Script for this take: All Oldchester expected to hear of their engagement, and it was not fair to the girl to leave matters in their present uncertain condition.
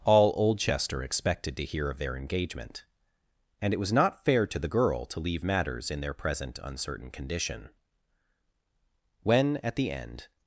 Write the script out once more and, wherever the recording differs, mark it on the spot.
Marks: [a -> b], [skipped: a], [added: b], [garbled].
All Oldchester expected to hear of their engagement, and it was not fair to the girl to leave matters in their present uncertain condition. [added: When at the end]